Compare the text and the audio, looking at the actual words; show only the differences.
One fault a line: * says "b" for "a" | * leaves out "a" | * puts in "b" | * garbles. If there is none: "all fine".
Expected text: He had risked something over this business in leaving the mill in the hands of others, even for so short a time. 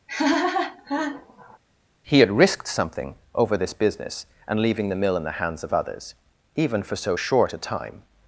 * says "and" for "in"